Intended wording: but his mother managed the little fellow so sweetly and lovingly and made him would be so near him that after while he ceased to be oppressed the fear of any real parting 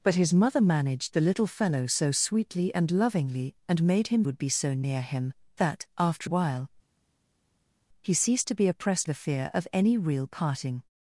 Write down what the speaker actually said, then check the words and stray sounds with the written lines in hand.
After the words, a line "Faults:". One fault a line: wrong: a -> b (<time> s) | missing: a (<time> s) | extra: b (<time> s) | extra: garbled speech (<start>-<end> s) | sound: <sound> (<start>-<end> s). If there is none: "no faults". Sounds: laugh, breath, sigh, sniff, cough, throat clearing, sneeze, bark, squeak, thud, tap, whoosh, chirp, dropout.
but his mother managed the little fellow so sweetly and lovingly and made him would be so near him that after while he ceased to be oppressed the fear of any real parting
Faults:
no faults